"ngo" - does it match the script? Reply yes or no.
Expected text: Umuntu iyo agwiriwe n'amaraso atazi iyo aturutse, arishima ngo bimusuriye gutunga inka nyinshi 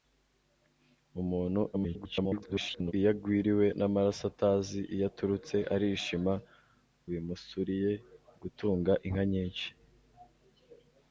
no